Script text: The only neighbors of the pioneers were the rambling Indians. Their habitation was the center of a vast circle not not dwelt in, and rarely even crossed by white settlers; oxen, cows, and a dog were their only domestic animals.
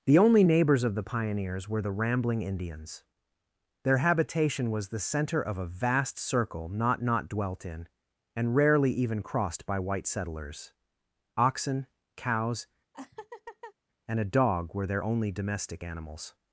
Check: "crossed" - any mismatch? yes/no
no